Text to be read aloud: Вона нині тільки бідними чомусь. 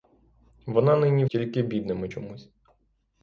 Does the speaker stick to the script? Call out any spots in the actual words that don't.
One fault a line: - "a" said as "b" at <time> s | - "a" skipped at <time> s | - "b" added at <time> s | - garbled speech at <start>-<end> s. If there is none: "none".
none